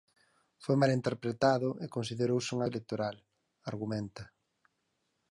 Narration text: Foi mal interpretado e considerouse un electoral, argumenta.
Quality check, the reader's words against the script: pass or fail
pass